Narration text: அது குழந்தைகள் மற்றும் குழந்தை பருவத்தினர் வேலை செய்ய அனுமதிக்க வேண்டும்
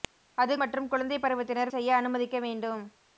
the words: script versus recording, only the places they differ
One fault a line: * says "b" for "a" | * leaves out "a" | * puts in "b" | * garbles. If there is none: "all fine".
* leaves out "குழந்தைகள்"
* leaves out "வேலை"